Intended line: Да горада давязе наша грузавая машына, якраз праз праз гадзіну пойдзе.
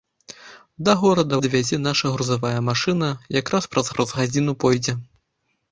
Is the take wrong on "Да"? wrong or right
right